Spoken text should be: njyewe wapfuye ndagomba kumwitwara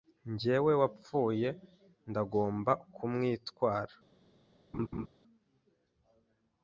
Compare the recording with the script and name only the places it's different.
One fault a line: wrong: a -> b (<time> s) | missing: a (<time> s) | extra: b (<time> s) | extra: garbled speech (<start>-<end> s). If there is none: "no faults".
no faults